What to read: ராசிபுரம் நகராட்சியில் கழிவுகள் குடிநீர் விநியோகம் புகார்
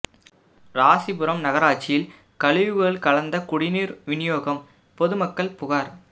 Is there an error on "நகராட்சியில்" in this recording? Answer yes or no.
no